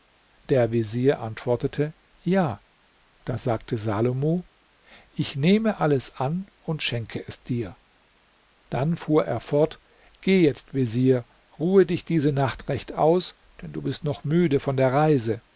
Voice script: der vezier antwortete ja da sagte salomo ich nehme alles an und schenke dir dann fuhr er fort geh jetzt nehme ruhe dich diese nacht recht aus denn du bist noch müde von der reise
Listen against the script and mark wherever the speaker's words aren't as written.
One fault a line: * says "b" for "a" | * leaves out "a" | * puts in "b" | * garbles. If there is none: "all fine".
* puts in "es"
* says "vezier" for "nehme"